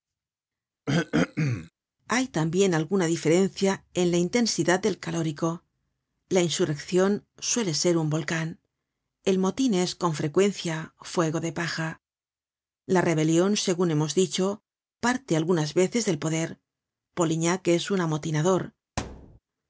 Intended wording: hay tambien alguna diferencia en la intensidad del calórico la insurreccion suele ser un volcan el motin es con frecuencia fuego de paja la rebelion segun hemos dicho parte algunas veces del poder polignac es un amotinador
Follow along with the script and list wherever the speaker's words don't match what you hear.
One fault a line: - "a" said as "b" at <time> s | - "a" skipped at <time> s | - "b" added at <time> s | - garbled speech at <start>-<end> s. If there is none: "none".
none